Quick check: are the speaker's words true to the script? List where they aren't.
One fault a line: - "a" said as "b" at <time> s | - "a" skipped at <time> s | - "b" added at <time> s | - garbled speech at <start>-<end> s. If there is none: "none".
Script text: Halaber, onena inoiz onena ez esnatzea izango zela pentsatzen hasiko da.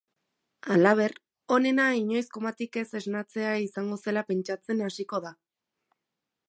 - "onena" said as "komatik" at 2.4 s